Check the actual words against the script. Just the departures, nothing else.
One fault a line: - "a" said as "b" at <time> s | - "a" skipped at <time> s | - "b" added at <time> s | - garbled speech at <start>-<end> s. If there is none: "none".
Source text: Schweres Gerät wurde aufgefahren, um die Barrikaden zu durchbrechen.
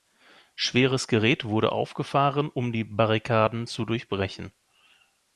none